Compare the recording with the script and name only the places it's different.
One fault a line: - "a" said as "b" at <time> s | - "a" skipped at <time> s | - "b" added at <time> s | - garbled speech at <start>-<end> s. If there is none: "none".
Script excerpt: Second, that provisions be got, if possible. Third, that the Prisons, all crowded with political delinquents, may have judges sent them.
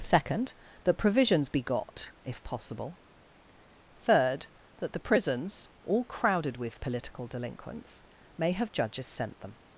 none